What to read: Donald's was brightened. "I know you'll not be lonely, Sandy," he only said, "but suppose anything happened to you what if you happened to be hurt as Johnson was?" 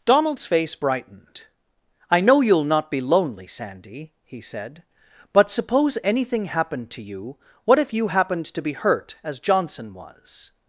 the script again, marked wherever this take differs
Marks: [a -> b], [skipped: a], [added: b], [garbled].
Donald's [was -> face] brightened. "I know you'll not be lonely, Sandy," he [skipped: only] said, "but suppose anything happened to you what if you happened to be hurt as Johnson was?"